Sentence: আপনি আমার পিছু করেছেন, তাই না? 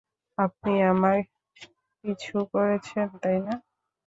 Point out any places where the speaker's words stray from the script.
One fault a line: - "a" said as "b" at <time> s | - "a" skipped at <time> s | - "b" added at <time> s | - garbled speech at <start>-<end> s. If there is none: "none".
none